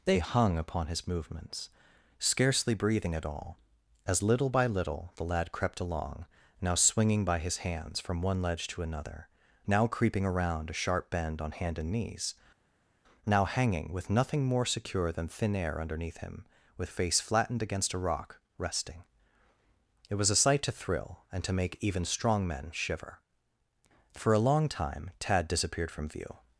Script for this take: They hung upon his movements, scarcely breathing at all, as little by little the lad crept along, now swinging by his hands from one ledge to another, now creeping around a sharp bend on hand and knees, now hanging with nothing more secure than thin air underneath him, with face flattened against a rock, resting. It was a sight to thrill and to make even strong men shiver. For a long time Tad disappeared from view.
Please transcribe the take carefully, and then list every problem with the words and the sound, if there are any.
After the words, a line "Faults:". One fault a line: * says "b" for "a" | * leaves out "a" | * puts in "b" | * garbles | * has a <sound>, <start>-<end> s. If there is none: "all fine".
They hung upon his movements, scarcely breathing at all, as little by little the lad crept along, now swinging by his hands from one ledge to another, now creeping around a sharp bend on hand and knees, now hanging with nothing more secure than thin air underneath him, with face flattened against a rock, resting. It was a sight to thrill and to make even strong men shiver. For a long time Tad disappeared from view.
Faults:
all fine